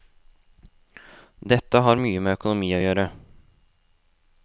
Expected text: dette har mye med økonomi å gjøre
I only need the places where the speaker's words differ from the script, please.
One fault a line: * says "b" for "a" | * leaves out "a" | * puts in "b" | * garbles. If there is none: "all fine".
all fine